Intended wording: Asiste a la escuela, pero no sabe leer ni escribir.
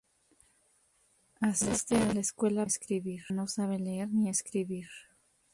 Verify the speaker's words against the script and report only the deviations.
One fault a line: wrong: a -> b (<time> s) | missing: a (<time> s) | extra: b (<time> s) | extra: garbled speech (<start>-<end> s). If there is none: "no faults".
wrong: pero -> escribir (2.6 s)